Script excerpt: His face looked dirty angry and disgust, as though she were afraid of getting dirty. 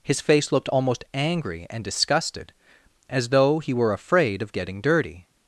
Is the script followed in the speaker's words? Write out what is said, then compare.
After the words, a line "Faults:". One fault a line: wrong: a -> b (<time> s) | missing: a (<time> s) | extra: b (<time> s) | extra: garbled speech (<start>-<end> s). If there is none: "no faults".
His face looked almost angry and disgusted, as though he were afraid of getting dirty.
Faults:
wrong: dirty -> almost (0.7 s)
wrong: disgust -> disgusted (1.8 s)
wrong: she -> he (3.6 s)